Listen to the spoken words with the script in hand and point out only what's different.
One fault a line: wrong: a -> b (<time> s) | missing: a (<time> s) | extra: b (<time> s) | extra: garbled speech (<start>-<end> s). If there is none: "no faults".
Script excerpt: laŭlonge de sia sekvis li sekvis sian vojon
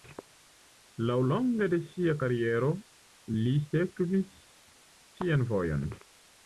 wrong: sekvis -> kariero (2.2 s)